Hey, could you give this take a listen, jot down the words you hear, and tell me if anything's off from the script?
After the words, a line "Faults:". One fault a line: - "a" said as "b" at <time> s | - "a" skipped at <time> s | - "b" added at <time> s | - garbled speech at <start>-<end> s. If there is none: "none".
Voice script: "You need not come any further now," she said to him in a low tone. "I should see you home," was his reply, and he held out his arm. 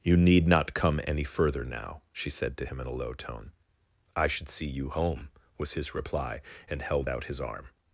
"You need not come any further now," she said to him in a low tone. "I should see you home," was his reply, and held out his arm.
Faults:
- "he" skipped at 6.8 s